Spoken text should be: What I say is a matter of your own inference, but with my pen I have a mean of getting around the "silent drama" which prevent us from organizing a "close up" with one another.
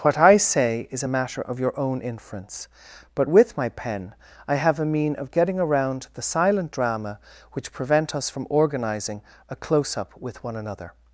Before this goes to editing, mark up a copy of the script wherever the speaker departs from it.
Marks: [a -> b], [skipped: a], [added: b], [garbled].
What I say is a matter of your own inference, but with my pen I have a mean of getting around the "silent drama" which prevent us from organizing a "close up" with one another.